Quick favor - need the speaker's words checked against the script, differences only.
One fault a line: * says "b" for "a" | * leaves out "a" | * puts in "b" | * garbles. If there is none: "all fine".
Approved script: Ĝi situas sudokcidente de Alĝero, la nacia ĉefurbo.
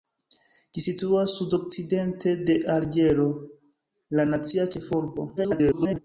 * garbles